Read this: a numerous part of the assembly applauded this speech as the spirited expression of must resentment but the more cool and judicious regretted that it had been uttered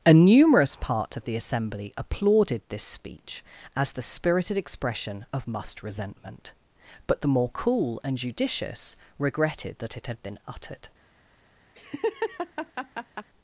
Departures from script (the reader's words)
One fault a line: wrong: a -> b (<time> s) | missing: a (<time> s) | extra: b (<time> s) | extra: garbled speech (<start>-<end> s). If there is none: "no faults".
no faults